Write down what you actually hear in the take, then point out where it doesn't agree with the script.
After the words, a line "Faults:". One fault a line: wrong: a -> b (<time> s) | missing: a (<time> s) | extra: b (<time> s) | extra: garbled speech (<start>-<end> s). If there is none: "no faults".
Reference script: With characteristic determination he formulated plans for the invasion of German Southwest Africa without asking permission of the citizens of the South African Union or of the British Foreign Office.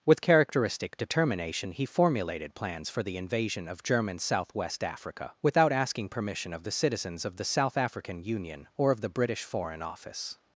With characteristic determination he formulated plans for the invasion of German Southwest Africa without asking permission of the citizens of the South African Union or of the British Foreign Office.
Faults:
no faults